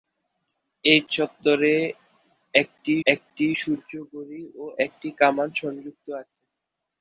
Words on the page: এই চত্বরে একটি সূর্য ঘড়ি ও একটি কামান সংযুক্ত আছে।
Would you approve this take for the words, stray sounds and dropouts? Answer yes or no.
no